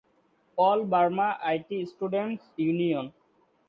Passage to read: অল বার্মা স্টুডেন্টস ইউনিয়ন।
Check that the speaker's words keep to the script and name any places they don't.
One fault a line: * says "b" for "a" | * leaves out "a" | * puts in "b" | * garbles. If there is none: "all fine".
* puts in "আইটি"